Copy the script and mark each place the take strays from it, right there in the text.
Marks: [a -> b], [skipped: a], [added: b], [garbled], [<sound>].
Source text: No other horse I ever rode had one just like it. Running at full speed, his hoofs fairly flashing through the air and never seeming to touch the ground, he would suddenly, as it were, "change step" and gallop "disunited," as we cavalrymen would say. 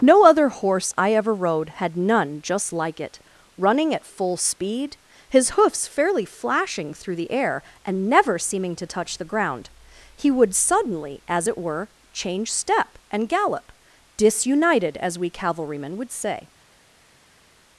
No other horse I ever rode had [one -> none] just like it. Running at full speed, his hoofs fairly flashing through the air and never seeming to touch the ground, he would suddenly, as it were, "change step" and gallop "disunited," as we cavalrymen would say.